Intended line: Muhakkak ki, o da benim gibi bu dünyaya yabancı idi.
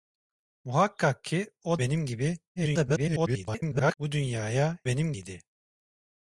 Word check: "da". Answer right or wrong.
wrong